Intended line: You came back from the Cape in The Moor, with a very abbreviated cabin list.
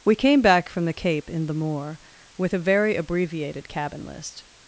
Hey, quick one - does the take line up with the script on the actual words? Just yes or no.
no